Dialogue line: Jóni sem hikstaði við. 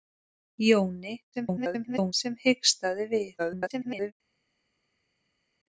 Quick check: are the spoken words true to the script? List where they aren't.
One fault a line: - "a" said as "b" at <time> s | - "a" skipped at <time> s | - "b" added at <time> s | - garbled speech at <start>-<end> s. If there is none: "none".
- garbled speech at 1.3-2.1 s
- garbled speech at 3.4-4.1 s